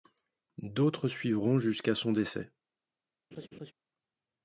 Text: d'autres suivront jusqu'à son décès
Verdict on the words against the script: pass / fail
pass